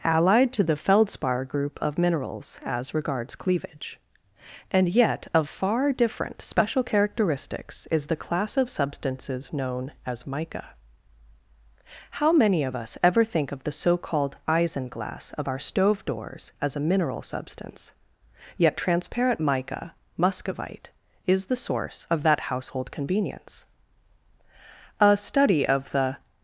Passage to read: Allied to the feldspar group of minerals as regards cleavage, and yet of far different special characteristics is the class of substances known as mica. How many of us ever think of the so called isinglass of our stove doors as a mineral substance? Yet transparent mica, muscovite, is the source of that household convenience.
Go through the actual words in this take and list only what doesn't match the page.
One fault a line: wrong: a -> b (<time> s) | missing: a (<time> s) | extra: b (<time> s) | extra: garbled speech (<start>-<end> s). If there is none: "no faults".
extra: A study of the (25.0 s)